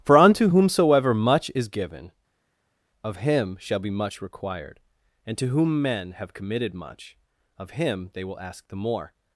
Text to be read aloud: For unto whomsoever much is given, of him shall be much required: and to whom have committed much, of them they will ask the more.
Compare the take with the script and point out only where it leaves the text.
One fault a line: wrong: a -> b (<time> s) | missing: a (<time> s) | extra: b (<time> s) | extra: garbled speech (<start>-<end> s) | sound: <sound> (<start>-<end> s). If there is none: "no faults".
extra: men (5.8 s)
wrong: them -> him (7.8 s)